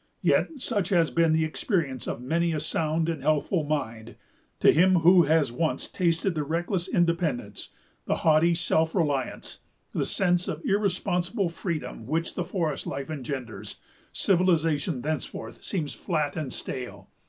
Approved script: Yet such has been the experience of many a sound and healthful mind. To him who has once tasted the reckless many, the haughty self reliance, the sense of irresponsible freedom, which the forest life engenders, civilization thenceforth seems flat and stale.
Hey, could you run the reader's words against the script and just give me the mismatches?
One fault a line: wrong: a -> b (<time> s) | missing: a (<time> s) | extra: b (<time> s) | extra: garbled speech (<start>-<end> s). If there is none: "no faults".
wrong: many -> independence (6.9 s)